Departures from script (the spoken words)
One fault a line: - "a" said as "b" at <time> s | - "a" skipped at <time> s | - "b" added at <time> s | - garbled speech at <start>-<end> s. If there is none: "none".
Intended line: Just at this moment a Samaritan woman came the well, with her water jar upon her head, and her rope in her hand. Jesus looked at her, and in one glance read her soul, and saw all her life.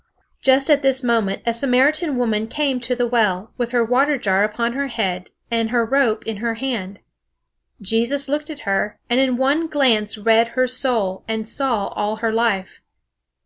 - "to" added at 2.8 s